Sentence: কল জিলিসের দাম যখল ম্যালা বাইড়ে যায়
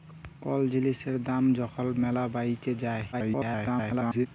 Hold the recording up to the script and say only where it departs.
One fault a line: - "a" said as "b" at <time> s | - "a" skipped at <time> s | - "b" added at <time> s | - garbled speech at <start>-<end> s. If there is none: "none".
- garbled speech at 3.1-4.3 s